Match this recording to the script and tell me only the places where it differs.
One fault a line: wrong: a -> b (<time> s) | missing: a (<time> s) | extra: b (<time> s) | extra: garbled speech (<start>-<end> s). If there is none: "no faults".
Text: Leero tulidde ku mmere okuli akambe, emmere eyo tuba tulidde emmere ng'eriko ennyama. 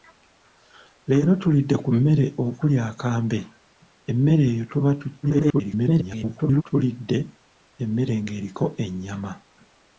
extra: garbled speech (5.2-6.6 s)